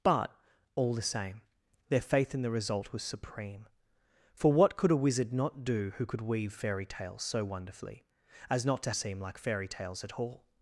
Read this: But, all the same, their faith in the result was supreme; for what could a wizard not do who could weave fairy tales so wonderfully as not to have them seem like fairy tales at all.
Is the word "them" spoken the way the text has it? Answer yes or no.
no